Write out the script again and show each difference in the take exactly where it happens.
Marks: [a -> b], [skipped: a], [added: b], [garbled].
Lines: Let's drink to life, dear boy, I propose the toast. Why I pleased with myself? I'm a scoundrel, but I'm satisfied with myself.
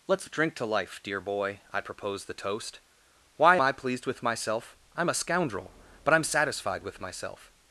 Let's drink to life, dear boy, I propose the toast. Why I pleased with myself? I'm a scoundrel, but I'm satisfied with myself.